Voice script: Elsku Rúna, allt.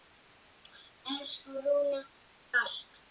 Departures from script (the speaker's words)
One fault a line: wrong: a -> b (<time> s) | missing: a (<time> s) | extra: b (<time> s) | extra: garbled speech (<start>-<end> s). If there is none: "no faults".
no faults